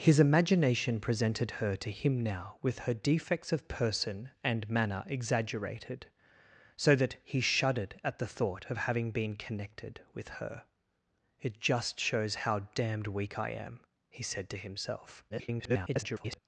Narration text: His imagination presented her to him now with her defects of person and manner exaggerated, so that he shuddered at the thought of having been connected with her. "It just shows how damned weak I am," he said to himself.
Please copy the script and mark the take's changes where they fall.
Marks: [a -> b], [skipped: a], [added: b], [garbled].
His imagination presented her to him now with her defects of person and manner exaggerated, so that he shuddered at the thought of having been connected with her. "It just shows how damned weak I am," he said to himself. [garbled]